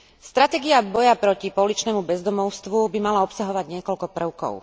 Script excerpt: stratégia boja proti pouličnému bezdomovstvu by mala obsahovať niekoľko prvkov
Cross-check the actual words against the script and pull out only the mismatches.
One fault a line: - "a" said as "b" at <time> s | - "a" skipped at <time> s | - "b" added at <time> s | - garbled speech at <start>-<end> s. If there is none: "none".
none